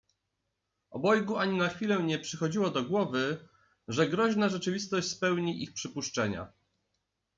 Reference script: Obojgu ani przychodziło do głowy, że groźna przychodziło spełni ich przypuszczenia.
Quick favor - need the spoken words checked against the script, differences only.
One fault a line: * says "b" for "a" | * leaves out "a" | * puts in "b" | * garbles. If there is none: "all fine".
* puts in "na chwilę nie"
* says "rzeczywistość" for "przychodziło"